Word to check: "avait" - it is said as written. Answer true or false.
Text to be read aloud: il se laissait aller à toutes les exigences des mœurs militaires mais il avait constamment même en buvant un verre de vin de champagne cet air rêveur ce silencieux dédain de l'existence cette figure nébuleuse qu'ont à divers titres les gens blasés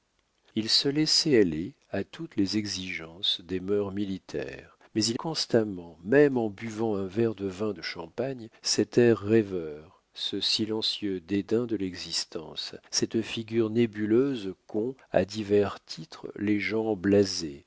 false